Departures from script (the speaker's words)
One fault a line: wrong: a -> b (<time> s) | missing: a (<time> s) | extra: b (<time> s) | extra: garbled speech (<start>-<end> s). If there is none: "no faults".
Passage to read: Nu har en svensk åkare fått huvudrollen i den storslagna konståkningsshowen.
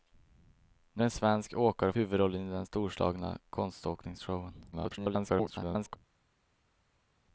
missing: har (1.0 s)
missing: fått (1.9 s)
extra: garbled speech (4.7-6.0 s)